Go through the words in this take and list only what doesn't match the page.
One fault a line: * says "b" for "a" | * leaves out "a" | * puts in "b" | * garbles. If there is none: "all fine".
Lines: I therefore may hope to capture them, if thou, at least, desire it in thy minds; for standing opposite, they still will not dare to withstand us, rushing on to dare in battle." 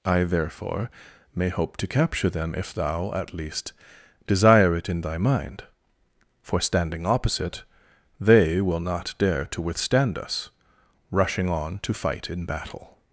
* says "mind" for "minds"
* leaves out "still"
* says "fight" for "dare"